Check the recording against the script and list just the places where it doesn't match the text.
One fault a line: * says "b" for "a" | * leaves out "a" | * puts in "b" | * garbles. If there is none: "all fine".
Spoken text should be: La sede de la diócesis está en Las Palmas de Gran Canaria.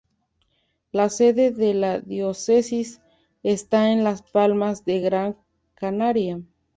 all fine